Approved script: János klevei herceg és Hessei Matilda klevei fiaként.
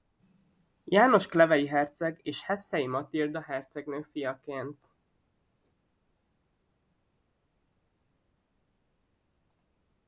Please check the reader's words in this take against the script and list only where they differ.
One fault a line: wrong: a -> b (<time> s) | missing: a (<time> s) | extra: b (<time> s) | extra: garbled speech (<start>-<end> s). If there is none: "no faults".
wrong: klevei -> hercegnő (3.4 s)